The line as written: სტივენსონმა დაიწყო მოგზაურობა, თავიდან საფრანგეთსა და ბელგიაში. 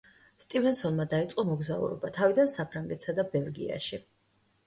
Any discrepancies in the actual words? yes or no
no